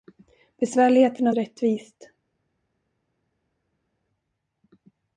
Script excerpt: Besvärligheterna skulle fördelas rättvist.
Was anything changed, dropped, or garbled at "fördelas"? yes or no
yes